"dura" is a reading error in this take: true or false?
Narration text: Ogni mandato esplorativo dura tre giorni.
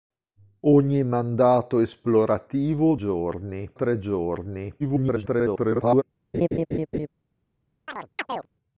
true